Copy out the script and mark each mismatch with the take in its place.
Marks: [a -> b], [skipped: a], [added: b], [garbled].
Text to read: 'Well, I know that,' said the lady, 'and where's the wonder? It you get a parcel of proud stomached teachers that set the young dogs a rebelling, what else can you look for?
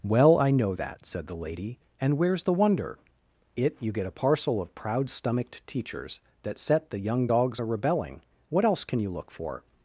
'Well, I know that,' said the lady, 'and where's the wonder? It you get a parcel of proud stomached teachers that set the young dogs a rebelling, what else can you look for?